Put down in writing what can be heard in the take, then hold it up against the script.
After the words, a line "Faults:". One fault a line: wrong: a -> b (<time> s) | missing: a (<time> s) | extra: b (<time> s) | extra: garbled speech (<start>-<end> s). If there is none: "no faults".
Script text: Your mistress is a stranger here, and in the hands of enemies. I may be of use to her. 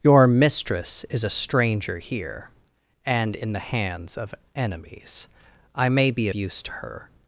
Your mistress is a stranger here, and in the hands of enemies. I may be use to her.
Faults:
missing: of (6.3 s)